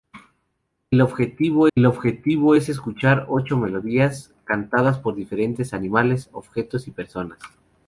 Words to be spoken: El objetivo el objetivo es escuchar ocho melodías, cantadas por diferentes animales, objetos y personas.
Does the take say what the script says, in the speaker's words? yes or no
yes